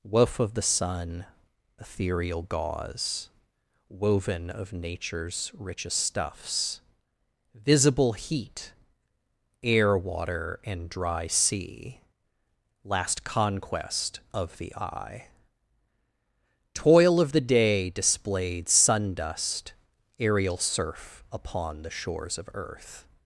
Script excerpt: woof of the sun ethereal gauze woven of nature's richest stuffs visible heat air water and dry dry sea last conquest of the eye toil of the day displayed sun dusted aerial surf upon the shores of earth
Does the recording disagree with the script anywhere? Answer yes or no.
yes